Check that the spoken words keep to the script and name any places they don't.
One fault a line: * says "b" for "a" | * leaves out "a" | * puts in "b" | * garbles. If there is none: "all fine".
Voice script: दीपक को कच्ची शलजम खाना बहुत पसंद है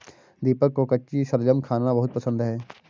all fine